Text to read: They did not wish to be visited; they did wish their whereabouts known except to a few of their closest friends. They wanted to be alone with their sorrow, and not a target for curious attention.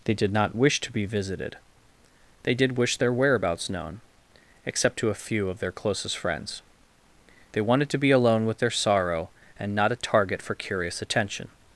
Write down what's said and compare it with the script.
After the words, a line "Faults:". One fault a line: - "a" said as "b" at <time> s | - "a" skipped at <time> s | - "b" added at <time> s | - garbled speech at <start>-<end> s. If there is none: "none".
They did not wish to be visited; they did wish their whereabouts known except to a few of their closest friends. They wanted to be alone with their sorrow, and not a target for curious attention.
Faults:
none